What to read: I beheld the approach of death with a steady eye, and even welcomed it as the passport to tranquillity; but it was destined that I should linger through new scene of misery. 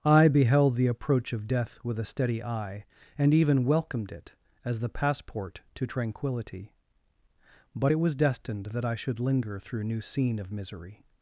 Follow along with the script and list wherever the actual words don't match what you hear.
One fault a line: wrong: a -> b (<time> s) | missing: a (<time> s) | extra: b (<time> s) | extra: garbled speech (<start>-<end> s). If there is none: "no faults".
no faults